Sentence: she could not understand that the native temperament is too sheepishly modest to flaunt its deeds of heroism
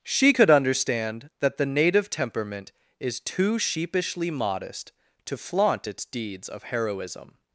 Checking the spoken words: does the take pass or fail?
fail